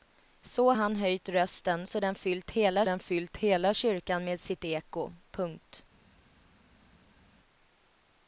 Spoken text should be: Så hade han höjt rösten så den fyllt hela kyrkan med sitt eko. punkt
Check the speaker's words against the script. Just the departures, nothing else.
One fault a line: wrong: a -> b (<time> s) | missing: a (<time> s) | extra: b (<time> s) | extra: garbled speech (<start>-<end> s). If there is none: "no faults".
missing: hade (0.7 s)
extra: den fyllt hela (2.8 s)